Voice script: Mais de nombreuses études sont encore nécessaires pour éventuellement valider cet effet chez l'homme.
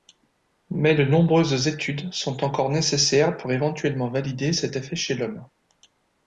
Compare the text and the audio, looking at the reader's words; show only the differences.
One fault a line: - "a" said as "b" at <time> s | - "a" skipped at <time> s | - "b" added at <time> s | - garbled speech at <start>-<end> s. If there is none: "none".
none